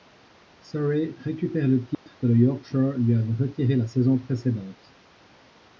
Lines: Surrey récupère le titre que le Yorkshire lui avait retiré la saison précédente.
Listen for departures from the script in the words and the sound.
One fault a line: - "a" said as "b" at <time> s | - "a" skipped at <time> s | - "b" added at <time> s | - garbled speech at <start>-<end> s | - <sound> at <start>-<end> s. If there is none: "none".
- dropout at 1.9-2.1 s